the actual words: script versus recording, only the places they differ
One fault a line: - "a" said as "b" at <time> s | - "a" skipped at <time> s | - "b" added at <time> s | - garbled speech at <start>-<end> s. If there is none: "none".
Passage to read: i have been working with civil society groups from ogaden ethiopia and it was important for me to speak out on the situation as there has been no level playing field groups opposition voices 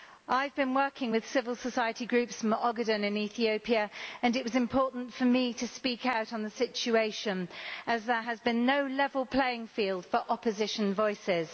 - "in" added at 3.1 s
- "groups" said as "for" at 10.1 s